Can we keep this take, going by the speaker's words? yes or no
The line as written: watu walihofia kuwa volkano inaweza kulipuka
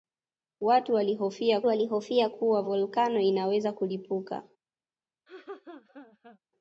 no